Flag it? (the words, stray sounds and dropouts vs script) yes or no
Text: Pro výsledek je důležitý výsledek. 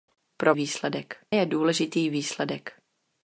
no